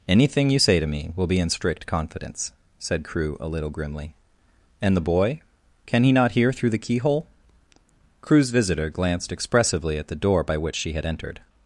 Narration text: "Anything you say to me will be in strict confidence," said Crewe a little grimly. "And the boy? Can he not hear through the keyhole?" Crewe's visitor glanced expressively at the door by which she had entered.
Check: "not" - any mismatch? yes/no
no